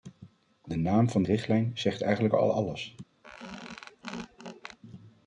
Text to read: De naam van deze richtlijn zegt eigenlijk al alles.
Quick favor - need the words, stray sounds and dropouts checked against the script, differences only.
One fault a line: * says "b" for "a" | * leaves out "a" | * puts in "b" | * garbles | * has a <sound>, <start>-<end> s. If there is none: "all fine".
* leaves out "deze"
* has a squeak, 3.2-4.8 s